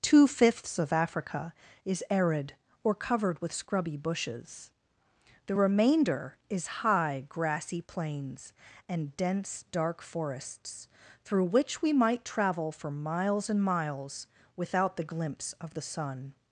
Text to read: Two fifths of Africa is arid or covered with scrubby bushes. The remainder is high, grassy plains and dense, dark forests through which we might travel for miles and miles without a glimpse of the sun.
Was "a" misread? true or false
true